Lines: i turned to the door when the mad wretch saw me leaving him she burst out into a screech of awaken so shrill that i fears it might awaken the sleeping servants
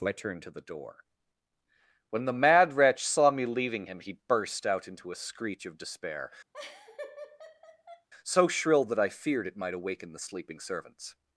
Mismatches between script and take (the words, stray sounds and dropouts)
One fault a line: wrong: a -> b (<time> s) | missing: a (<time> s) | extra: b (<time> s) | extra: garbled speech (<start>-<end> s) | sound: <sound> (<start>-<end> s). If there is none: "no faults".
wrong: she -> he (4.0 s)
wrong: awaken -> despair (5.8 s)
sound: laugh (6.5-8.1 s)
wrong: fears -> feared (9.1 s)